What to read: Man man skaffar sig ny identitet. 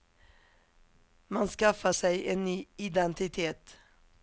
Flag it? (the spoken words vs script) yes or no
yes